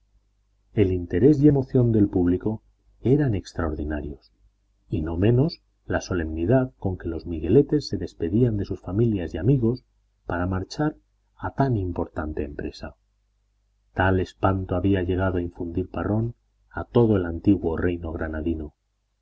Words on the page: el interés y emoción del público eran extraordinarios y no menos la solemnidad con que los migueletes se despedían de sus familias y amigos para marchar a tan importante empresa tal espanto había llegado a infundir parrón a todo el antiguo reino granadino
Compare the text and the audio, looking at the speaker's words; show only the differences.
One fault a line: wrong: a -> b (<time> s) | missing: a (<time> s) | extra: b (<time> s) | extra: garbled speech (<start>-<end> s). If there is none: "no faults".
no faults